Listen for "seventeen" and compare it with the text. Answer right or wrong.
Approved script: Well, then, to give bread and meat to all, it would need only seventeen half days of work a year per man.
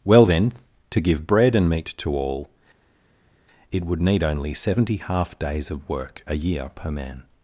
wrong